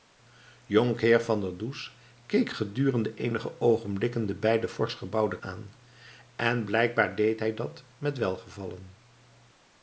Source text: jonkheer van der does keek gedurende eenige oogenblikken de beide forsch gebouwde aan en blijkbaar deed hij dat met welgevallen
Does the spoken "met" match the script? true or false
true